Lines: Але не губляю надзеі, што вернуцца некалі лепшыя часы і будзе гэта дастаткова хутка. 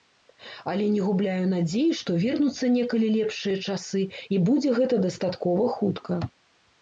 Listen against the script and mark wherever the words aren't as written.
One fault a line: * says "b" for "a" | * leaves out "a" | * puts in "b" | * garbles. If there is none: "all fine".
all fine